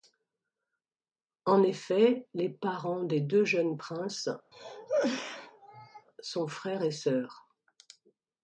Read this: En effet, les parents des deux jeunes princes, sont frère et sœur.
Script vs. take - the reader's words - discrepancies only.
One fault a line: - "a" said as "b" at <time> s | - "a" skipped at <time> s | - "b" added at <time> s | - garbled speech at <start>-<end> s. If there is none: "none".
none